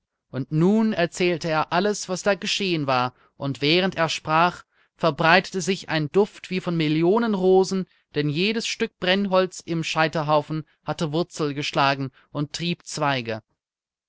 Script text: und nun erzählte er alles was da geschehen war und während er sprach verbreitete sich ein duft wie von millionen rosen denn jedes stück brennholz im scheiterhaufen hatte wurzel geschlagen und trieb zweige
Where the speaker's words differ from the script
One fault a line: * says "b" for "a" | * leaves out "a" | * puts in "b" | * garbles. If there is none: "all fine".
all fine